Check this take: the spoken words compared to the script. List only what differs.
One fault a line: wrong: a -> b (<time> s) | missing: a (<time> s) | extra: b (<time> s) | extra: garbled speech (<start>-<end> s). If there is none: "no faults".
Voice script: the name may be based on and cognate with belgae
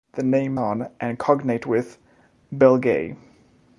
missing: may be based (0.6 s)